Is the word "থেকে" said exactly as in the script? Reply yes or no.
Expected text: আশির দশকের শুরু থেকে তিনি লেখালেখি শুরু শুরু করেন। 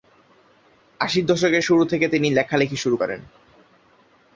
yes